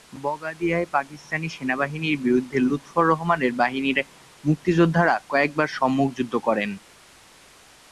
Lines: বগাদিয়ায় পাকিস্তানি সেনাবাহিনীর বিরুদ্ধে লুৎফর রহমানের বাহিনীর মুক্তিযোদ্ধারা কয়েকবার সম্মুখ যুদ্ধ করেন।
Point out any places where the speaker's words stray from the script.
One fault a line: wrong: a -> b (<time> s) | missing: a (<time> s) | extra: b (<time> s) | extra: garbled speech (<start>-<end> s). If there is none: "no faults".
no faults